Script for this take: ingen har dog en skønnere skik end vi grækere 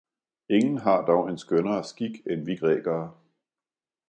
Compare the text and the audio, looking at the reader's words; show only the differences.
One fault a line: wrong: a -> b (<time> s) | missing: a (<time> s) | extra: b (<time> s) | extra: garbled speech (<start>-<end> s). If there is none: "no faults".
no faults